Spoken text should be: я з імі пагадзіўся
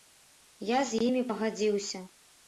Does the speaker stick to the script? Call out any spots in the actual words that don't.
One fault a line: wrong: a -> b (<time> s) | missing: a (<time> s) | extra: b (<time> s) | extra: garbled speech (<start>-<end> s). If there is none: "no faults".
no faults